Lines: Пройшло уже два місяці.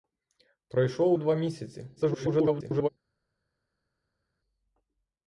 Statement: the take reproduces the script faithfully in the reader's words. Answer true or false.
false